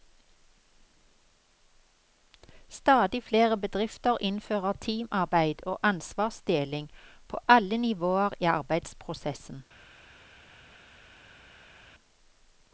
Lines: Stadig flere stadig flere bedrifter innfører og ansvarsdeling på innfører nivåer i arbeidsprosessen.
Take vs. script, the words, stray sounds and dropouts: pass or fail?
fail